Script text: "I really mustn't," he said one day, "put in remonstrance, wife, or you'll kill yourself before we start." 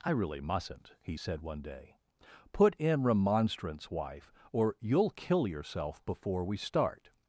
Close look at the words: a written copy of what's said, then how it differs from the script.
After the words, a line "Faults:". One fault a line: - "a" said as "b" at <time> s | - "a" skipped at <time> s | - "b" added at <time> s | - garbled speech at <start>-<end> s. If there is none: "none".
"I really mustn't," he said one day, "put in remonstrance, wife, or you'll kill yourself before we start."
Faults:
none